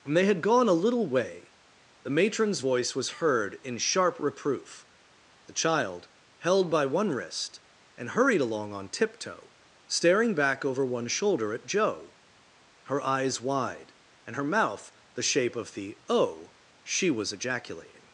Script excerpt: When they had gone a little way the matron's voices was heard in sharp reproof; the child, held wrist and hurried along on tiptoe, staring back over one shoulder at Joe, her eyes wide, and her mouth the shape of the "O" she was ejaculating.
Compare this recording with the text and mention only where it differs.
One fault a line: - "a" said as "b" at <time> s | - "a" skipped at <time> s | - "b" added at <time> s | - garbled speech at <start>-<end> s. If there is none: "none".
- "voices" said as "voice" at 2.6 s
- "by one" added at 6.7 s